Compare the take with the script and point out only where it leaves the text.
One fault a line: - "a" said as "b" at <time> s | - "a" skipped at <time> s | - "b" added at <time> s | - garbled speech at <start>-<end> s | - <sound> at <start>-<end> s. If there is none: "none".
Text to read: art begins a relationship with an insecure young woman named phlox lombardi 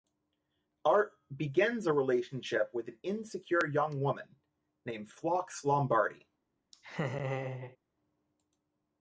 - laugh at 6.7-7.8 s